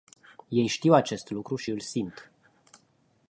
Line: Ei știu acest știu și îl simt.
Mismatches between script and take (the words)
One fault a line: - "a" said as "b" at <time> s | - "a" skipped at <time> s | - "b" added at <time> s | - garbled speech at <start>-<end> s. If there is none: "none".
- "știu" said as "lucru" at 1.3 s